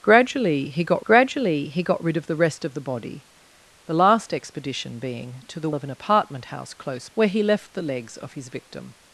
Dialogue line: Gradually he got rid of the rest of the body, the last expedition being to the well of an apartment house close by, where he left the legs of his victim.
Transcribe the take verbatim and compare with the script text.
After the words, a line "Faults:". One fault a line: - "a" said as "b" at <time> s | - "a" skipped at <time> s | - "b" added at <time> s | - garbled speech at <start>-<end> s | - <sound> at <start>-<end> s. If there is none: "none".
Gradually he got gradually he got rid of the rest of the body, the last expedition being to the of an apartment house close where he left the legs of his victim.
Faults:
- "gradually he got" added at 1.0 s
- "well" skipped at 5.7 s
- "by" skipped at 7.1 s